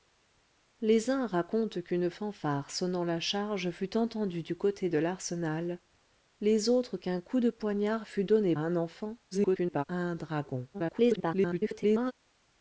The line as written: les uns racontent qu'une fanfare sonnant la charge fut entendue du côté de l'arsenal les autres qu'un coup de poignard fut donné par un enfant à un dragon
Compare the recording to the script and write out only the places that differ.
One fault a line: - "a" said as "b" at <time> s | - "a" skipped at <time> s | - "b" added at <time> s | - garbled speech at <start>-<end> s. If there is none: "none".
- "par" skipped at 8.6 s
- garbled speech at 9.3-9.8 s
- garbled speech at 10.7-12.1 s